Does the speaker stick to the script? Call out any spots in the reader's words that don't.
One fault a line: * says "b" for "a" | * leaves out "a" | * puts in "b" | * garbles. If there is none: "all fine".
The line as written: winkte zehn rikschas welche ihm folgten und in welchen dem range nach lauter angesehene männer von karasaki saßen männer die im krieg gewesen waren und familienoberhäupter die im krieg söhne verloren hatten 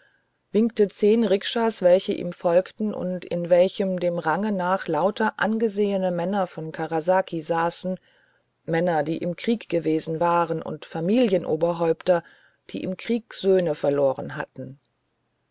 all fine